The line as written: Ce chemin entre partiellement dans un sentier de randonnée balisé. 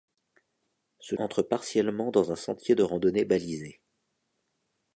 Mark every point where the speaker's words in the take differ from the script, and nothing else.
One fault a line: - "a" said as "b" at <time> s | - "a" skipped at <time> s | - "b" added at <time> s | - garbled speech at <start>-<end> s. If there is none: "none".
- "chemin" skipped at 1.1 s